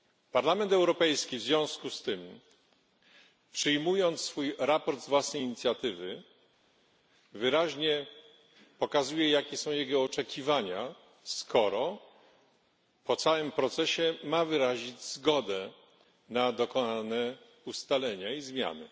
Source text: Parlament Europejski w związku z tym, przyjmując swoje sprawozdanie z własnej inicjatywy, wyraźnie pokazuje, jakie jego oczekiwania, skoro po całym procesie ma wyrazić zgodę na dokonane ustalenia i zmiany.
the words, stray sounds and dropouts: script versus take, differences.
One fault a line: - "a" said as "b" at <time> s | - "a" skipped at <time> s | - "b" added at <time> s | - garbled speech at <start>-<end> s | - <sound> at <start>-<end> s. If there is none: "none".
- "są" added at 9.6 s